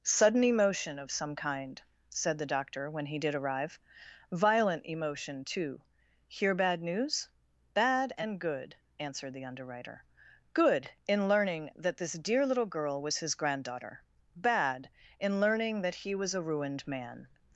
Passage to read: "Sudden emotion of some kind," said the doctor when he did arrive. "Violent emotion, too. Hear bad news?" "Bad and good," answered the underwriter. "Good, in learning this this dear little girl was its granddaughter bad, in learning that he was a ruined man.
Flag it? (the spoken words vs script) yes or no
yes